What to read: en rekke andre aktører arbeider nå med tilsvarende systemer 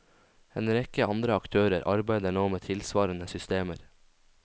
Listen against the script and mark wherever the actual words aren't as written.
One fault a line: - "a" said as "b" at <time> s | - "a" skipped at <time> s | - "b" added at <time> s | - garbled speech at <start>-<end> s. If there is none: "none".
none